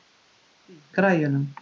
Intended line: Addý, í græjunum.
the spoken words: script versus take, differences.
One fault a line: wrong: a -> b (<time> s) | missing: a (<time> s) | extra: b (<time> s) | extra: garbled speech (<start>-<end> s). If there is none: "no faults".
no faults